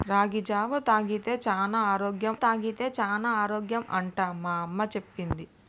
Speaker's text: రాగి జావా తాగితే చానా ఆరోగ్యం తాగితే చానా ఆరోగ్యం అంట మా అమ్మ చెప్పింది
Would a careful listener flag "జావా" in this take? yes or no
no